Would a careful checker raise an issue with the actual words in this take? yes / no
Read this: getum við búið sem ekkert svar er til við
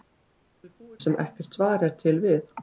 no